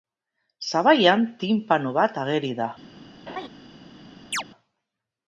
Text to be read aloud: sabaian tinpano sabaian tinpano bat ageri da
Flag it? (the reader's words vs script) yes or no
yes